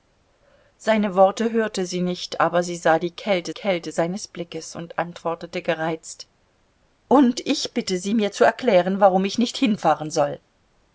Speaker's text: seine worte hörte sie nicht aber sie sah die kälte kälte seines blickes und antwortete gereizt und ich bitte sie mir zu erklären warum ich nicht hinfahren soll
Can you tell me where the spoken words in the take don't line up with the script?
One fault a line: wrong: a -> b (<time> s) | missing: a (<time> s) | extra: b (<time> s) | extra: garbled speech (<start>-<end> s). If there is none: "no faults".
no faults